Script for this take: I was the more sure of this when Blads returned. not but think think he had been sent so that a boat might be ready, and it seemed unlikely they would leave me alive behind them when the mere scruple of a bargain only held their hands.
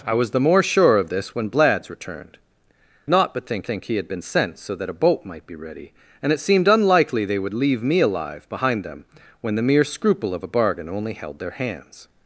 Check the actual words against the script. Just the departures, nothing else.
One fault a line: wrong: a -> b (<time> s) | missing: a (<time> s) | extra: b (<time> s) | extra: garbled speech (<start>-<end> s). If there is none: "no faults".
no faults